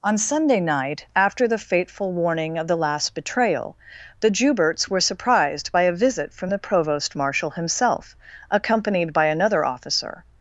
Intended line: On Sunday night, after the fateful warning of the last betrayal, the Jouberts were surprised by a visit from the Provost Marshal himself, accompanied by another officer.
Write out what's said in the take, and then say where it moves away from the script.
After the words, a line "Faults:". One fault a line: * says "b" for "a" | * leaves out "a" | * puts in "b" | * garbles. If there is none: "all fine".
On Sunday night, after the fateful warning of the last betrayal, the Jouberts were surprised by a visit from the Provost Marshal himself, accompanied by another officer.
Faults:
all fine